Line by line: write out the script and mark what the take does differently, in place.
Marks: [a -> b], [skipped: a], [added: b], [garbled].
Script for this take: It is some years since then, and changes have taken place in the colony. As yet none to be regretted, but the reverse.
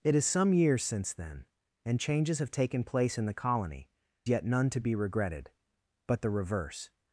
It is some years since then, and changes have taken place in the colony. [skipped: As] yet none to be regretted, but the reverse.